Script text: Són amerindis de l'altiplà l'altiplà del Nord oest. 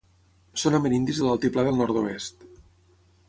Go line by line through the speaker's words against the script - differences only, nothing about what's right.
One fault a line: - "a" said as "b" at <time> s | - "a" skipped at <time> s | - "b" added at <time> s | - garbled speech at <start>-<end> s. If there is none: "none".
- "l'altiplà" skipped at 1.6 s